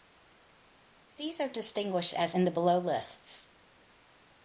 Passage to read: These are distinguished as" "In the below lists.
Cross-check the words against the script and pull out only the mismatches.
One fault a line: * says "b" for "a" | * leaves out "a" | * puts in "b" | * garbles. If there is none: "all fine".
all fine